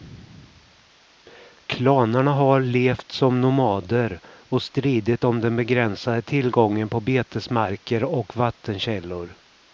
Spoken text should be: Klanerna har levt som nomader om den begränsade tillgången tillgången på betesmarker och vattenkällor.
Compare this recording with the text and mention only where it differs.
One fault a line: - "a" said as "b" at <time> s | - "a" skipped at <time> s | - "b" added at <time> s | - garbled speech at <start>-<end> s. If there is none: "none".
- "och stridit" added at 4.3 s
- "tillgången" skipped at 6.9 s